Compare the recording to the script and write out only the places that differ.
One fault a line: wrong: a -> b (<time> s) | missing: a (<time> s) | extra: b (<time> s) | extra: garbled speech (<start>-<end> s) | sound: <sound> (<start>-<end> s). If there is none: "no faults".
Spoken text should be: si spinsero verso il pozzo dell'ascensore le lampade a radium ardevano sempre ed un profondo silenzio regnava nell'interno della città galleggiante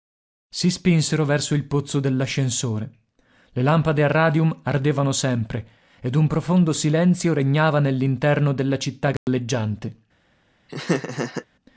sound: dropout (9.2-9.3 s)
sound: laugh (10.7-11.5 s)